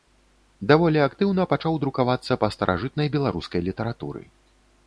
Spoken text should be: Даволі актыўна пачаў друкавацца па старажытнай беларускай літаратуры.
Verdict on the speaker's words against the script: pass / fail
pass